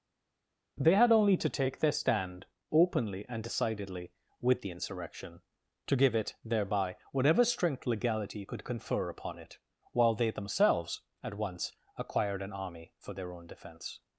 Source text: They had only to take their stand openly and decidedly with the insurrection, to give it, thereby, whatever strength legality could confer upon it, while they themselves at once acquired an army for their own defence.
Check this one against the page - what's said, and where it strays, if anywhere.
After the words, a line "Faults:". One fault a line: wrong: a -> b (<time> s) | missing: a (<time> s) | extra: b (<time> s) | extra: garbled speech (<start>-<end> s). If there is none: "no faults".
They had only to take their stand openly and decidedly with the insurrection, to give it, thereby, whatever strength legality could confer upon it, while they themselves at once acquired an army for their own defence.
Faults:
no faults